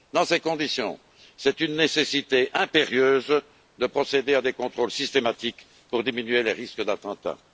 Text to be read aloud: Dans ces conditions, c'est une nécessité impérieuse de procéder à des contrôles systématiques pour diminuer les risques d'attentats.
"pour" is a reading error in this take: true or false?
false